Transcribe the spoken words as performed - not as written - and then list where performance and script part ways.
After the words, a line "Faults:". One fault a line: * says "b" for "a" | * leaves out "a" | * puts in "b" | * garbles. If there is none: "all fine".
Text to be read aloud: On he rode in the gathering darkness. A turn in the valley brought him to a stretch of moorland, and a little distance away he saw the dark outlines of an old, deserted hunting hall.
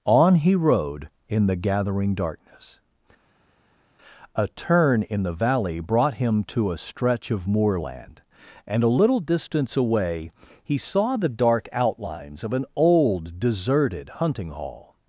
On he rode in the gathering darkness. A turn in the valley brought him to a stretch of moorland, and a little distance away he saw the dark outlines of an old, deserted hunting hall.
Faults:
all fine